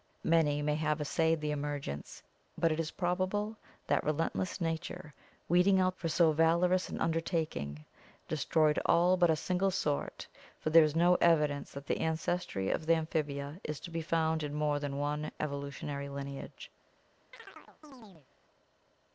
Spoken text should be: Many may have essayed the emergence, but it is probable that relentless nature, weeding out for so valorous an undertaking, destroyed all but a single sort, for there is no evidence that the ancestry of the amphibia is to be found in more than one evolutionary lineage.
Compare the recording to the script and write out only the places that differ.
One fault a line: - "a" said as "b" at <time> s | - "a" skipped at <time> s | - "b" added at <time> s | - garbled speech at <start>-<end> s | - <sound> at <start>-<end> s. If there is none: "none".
- chirp at 17.3-18.3 s